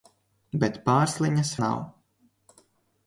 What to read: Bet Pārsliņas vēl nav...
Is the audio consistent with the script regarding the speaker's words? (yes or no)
no